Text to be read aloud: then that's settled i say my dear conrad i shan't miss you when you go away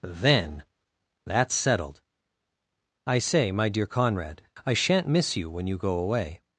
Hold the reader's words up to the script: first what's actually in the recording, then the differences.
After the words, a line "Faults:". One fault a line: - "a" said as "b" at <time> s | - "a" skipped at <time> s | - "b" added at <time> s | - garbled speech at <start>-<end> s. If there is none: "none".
then that's settled i say my dear conrad i shan't miss you when you go away
Faults:
none